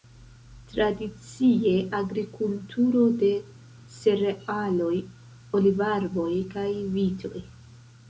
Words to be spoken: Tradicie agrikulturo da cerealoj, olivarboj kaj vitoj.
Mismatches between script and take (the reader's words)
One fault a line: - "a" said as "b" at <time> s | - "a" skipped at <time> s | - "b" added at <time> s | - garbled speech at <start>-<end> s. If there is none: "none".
- "da" said as "de" at 3.2 s